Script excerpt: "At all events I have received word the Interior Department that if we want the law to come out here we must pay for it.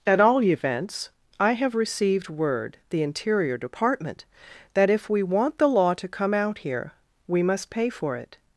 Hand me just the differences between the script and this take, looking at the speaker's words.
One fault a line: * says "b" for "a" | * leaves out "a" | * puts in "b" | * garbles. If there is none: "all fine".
all fine